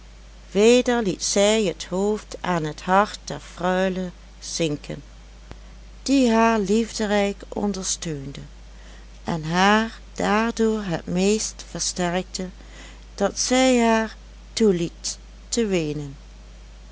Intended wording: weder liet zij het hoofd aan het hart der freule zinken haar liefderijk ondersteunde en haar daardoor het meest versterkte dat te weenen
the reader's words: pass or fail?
fail